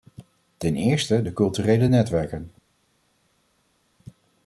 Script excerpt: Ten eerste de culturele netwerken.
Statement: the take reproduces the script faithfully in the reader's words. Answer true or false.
true